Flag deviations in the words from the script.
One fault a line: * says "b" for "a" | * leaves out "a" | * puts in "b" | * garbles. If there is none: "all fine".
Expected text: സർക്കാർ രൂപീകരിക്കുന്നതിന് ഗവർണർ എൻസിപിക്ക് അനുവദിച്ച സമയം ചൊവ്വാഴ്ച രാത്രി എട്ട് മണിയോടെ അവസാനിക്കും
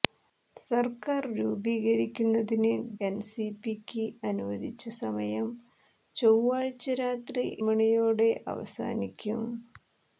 * leaves out "ഗവർണർ"
* leaves out "എട്ട്"